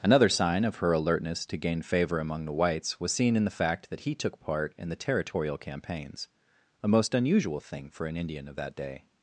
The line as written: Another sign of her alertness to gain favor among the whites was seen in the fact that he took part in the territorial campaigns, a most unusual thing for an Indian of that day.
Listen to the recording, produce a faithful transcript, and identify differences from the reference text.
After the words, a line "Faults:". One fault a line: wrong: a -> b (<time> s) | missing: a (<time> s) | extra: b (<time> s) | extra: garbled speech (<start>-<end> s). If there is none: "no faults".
Another sign of her alertness to gain favor among the whites was seen in the fact that he took part in the territorial campaigns, a most unusual thing for an Indian of that day.
Faults:
no faults